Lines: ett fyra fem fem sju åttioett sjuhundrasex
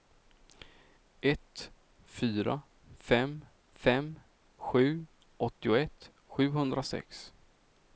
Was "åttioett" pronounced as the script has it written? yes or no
yes